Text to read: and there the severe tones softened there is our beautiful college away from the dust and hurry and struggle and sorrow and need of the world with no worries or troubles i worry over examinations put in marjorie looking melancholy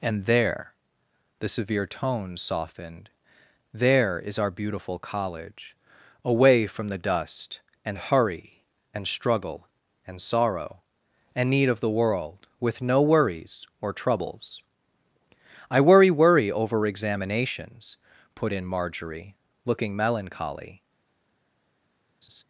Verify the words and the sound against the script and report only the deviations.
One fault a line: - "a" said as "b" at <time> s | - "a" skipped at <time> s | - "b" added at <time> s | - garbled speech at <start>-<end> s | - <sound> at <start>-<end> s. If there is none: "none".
- "worry" added at 16.1 s
- laugh at 22.2-22.4 s